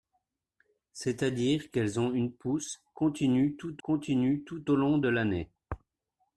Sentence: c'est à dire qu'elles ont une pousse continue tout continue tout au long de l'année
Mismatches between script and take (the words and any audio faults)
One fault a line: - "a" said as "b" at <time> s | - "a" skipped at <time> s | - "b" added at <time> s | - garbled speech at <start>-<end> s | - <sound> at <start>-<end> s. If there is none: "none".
none